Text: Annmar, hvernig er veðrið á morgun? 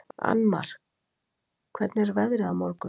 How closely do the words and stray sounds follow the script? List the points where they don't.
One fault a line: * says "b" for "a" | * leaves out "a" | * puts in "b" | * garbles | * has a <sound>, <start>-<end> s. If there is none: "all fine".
all fine